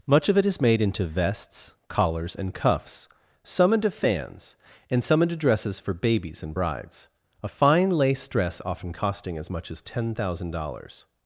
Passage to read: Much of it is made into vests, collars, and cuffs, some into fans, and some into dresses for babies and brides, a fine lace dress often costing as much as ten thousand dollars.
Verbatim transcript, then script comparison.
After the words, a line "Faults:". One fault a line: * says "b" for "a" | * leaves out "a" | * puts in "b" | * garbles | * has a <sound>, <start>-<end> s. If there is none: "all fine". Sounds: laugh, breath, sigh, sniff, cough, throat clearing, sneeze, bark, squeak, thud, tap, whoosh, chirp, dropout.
Much of it is made into vests, collars, and cuffs, some into fans, and some into dresses for babies and brides, a fine lace dress often costing as much as ten thousand dollars.
Faults:
all fine